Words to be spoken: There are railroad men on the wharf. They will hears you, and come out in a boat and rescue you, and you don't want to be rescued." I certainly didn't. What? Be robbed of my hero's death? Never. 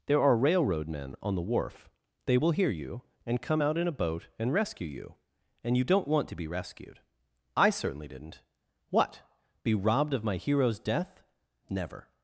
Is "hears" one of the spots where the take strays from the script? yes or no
yes